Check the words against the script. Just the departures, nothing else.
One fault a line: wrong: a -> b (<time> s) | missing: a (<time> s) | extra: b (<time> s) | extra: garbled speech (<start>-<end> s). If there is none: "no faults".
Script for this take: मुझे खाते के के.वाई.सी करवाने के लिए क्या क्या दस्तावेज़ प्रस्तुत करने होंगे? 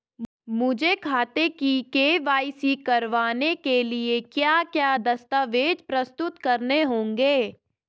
wrong: के -> की (1.5 s)